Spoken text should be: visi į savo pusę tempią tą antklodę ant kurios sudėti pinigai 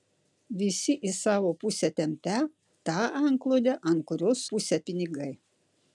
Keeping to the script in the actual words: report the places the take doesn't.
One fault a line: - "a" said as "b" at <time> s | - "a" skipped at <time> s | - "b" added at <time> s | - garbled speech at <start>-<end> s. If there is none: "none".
- "sudėti" said as "pusę" at 4.5 s